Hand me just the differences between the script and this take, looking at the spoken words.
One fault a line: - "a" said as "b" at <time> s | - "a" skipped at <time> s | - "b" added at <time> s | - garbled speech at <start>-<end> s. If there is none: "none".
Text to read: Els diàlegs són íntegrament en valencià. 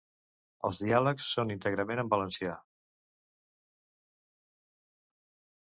none